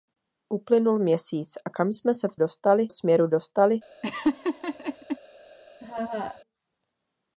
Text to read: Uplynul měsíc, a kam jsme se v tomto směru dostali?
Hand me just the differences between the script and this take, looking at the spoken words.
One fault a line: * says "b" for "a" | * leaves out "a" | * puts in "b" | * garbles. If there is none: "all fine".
* says "dostali" for "tomto"